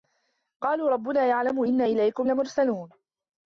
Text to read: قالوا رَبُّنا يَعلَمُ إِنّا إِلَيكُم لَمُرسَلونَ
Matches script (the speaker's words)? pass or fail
pass